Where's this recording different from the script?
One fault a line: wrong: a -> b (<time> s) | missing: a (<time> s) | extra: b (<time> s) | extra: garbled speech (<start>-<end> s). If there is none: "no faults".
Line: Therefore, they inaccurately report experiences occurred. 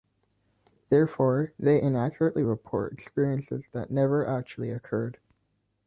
extra: that never actually (3.7 s)